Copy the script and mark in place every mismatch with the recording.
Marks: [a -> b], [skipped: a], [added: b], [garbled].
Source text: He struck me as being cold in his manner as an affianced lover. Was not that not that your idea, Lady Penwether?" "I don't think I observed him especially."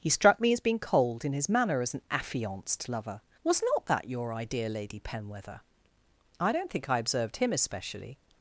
He struck me as being cold in his manner as an affianced lover. Was not that [skipped: not that] your idea, Lady Penwether?" "I don't think I observed him especially."